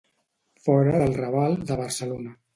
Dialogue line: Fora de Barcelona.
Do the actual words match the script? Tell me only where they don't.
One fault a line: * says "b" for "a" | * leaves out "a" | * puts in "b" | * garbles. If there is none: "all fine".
* puts in "del Raval"